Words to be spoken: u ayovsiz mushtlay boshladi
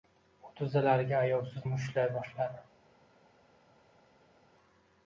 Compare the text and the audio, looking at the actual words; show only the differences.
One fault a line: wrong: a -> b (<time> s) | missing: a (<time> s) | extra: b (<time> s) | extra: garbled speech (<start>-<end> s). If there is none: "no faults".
extra: tizzalariga (0.6 s)